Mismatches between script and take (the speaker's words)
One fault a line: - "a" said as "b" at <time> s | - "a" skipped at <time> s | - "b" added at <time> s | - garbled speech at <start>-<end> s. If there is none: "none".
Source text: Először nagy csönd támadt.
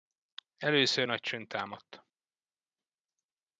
none